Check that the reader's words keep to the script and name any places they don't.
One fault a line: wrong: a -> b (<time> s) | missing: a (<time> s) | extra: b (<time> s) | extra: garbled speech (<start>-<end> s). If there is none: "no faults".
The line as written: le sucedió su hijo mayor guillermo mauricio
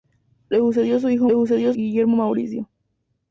wrong: mayor -> sucedió (1.3 s)